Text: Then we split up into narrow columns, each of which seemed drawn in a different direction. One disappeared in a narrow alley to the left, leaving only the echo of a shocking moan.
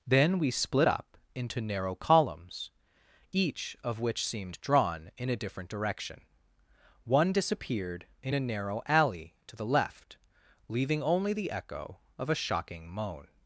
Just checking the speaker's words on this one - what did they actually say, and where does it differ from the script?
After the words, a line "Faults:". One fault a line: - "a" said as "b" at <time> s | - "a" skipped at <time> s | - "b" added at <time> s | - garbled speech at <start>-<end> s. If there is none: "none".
Then we split up into narrow columns, each of which seemed drawn in a different direction. One disappeared in a narrow alley to the left, leaving only the echo of a shocking moan.
Faults:
none